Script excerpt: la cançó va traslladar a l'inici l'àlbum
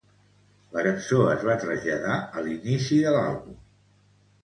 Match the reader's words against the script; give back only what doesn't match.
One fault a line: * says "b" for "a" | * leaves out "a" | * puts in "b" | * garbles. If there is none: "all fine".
* puts in "es"
* puts in "de"